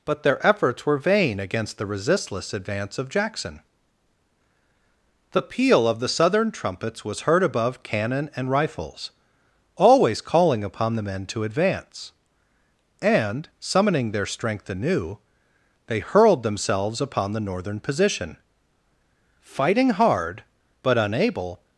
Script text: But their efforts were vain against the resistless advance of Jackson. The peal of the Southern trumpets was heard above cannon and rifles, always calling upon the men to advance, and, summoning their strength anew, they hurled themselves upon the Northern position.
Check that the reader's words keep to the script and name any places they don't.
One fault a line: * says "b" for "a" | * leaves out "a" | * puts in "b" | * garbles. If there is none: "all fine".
* puts in "Fighting hard but unable"